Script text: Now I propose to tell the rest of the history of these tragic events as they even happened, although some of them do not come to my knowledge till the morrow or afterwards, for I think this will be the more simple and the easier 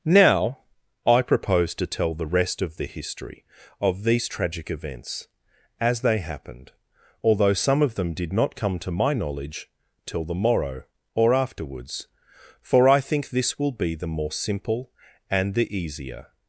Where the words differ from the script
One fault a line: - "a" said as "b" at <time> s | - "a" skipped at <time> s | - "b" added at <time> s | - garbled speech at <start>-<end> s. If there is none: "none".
- "even" skipped at 6.2 s
- "do" said as "did" at 8.1 s